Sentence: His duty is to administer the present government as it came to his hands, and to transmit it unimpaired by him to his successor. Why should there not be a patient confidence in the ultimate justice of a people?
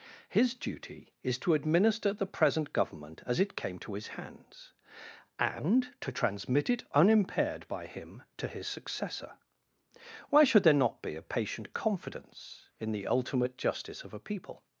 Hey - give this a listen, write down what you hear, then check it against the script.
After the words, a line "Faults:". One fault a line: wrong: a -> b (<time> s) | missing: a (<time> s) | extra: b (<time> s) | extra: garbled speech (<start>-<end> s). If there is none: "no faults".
His duty is to administer the present government as it came to his hands, and to transmit it unimpaired by him to his successor. Why should there not be a patient confidence in the ultimate justice of a people?
Faults:
no faults